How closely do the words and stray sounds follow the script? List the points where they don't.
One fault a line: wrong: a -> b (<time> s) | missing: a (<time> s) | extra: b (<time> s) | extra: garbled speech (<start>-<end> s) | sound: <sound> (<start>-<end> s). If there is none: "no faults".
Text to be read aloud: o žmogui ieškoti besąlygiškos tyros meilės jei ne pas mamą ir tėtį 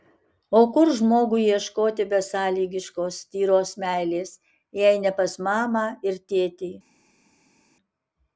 extra: kur (0.8 s)